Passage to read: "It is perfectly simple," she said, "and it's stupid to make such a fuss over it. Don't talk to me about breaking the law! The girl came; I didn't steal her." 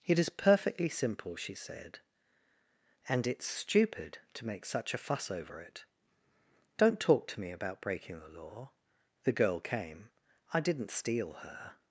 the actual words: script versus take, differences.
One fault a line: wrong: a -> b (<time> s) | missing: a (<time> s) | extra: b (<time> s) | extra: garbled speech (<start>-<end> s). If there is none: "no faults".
no faults